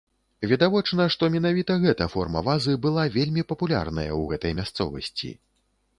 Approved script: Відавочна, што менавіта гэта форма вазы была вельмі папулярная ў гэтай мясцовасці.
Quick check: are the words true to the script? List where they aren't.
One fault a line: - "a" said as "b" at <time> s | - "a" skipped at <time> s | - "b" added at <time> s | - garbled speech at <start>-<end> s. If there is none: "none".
none